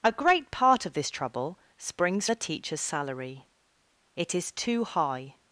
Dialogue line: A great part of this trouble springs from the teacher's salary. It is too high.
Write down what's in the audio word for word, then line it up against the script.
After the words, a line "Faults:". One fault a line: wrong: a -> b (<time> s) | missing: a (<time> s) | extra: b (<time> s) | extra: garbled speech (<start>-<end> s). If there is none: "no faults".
A great part of this trouble springs the teacher's salary. It is too high.
Faults:
missing: from (2.3 s)